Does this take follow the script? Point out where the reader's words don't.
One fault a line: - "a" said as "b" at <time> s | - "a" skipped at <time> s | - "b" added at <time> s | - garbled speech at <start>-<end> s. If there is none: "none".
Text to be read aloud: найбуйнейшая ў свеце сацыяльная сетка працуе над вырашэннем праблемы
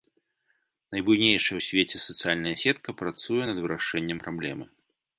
none